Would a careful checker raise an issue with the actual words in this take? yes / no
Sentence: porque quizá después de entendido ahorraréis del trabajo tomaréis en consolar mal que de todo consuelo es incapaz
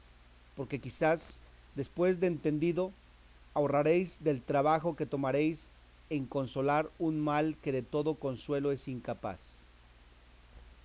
yes